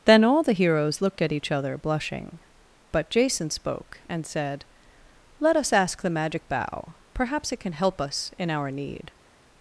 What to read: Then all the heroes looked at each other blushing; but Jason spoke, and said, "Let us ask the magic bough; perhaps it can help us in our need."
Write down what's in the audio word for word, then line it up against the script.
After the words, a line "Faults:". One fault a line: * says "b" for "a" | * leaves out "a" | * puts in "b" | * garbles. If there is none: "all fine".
Then all the heroes looked at each other blushing; but Jason spoke, and said, "Let us ask the magic bough; perhaps it can help us in our need."
Faults:
all fine